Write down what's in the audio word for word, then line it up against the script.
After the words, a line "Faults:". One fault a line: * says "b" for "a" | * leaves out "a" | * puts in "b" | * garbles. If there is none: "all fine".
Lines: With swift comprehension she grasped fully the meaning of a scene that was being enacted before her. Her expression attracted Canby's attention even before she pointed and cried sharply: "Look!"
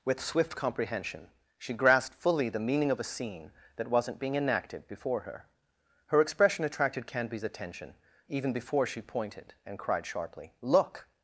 With swift comprehension she grasped fully the meaning of a scene that wasn't being enacted before her. Her expression attracted Canby's attention even before she pointed and cried sharply: "Look!"
Faults:
* says "wasn't" for "was"